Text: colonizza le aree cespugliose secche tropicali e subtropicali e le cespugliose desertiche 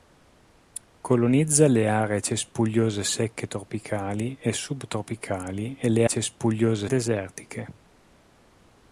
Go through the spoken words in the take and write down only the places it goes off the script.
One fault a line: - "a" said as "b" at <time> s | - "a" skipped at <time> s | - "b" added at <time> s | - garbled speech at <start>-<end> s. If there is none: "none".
none